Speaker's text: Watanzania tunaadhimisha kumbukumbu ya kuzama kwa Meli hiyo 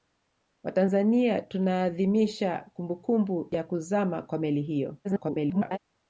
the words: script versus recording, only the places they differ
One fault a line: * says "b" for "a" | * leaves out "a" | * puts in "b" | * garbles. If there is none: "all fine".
* garbles